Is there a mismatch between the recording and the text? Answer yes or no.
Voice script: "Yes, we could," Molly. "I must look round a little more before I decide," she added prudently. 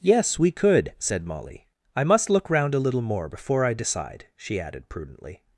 yes